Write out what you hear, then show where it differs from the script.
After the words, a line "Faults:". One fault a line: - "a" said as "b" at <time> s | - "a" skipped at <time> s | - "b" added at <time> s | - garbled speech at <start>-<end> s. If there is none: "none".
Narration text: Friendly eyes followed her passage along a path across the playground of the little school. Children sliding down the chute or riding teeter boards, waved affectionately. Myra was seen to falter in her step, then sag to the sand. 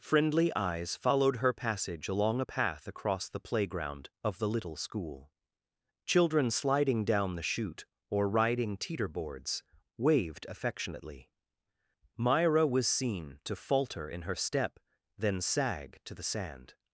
Friendly eyes followed her passage along a path across the playground of the little school. Children sliding down the chute or riding teeter boards, waved affectionately. Myra was seen to falter in her step, then sag to the sand.
Faults:
none